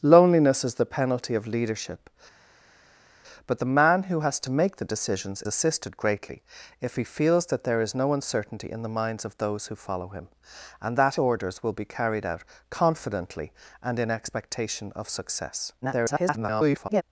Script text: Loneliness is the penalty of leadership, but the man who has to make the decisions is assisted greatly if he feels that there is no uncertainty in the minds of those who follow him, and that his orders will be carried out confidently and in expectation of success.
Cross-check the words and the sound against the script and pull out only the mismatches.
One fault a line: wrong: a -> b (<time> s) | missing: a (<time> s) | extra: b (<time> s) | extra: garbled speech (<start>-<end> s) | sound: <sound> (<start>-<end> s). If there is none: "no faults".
missing: is (5.4 s)
missing: his (11.2 s)
extra: garbled speech (15.8-17.0 s)